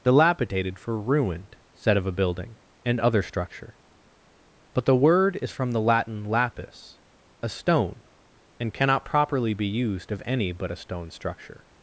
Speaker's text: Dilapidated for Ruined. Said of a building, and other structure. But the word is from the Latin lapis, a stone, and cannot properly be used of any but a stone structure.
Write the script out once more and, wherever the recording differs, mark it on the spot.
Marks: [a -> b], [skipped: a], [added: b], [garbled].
Dilapidated for Ruined. Said of a building, and other structure. But the word is from the Latin lapis, a stone, and cannot properly be used of any but a stone structure.